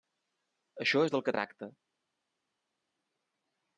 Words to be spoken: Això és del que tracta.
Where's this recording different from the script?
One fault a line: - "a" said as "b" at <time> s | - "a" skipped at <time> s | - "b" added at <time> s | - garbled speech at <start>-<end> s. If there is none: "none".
none